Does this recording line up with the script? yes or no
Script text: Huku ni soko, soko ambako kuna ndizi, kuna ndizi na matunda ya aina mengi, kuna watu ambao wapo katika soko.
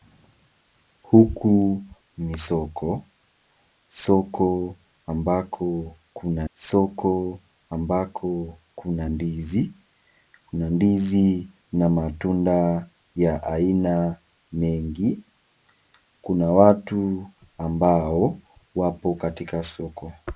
no